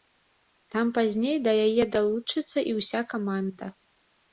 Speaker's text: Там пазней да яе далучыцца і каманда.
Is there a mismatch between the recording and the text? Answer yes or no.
yes